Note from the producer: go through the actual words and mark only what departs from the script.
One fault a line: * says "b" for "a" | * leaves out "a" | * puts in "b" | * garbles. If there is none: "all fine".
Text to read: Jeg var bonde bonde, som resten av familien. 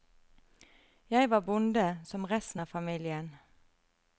* leaves out "bonde"